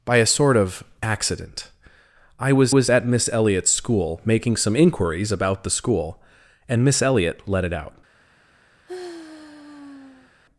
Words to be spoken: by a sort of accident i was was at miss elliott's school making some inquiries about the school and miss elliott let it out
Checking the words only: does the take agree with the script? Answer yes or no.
yes